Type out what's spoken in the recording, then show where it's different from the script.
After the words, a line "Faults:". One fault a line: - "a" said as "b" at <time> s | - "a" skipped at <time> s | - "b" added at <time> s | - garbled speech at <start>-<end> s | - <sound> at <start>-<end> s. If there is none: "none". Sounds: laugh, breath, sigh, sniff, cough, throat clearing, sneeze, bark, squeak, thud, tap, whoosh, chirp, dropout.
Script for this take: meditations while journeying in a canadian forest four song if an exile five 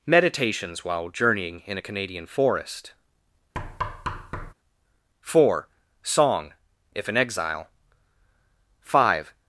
meditations while journeying in a canadian forest four song if an exile five
Faults:
- thud at 3.5-4.5 s